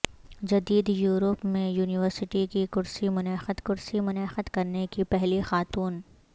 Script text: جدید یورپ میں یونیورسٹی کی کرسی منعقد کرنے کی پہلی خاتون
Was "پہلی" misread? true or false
false